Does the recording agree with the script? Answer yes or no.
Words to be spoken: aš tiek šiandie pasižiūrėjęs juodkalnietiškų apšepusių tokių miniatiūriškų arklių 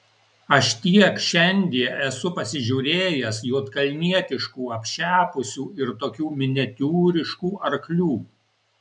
no